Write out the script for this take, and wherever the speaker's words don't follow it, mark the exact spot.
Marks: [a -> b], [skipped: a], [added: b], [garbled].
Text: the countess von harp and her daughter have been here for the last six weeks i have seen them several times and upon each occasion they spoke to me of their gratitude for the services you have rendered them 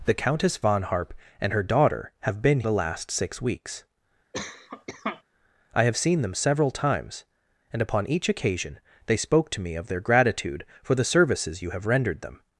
the countess von harp and her daughter have been [skipped: here for] the last six weeks i have seen them several times and upon each occasion they spoke to me of their gratitude for the services you have rendered them